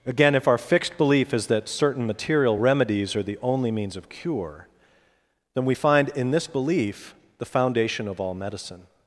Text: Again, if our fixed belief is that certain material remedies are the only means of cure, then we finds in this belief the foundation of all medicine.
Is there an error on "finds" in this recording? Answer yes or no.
yes